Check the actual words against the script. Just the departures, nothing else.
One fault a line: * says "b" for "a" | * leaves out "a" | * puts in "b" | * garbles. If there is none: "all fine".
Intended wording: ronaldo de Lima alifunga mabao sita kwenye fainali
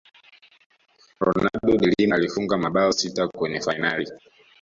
all fine